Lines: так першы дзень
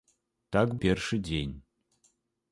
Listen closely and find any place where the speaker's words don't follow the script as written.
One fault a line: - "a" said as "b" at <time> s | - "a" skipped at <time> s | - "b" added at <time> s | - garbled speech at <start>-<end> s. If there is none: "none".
none